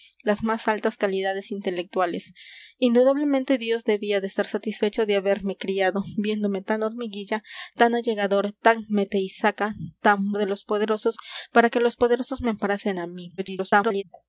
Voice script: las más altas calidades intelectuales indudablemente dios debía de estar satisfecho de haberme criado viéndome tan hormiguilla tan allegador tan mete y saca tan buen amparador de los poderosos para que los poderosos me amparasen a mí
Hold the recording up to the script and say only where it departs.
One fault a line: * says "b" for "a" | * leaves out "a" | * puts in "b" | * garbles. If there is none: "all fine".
* leaves out "buen amparador"
* garbles